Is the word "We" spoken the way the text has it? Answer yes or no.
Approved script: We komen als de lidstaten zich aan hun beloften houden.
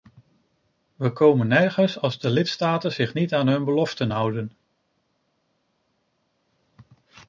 yes